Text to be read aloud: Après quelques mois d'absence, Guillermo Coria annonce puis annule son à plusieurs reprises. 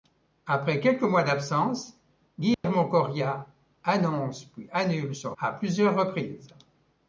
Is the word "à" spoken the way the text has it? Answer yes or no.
yes